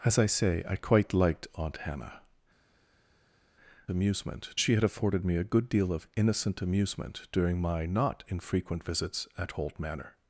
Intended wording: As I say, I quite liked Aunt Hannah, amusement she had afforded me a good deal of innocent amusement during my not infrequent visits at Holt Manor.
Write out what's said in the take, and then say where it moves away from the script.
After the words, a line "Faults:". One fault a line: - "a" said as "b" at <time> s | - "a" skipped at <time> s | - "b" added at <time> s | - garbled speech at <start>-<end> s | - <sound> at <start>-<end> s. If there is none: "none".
As I say, I quite liked Aunt Hannah, amusement she had afforded me a good deal of innocent amusement during my not infrequent visits at Holt Manor.
Faults:
none